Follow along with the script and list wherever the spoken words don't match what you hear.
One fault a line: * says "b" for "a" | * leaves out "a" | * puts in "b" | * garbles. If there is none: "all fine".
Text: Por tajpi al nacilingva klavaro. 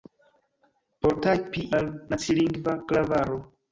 all fine